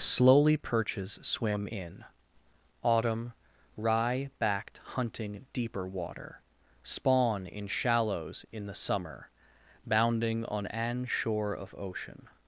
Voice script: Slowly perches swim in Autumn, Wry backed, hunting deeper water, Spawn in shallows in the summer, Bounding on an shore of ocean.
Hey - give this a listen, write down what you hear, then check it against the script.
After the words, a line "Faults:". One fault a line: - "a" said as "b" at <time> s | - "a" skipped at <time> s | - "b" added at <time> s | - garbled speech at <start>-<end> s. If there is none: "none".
Slowly perches swim in Autumn, Wry backed, hunting deeper water, Spawn in shallows in the summer, Bounding on an shore of ocean.
Faults:
none